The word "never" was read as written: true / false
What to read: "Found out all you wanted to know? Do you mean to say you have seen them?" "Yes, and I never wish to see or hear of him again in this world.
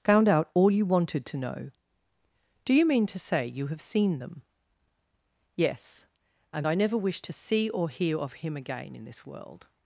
true